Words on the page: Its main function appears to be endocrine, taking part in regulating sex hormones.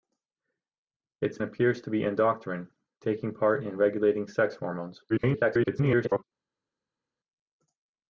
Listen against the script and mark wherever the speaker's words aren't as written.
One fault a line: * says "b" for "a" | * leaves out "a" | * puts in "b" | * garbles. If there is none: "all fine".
* leaves out "main function"
* garbles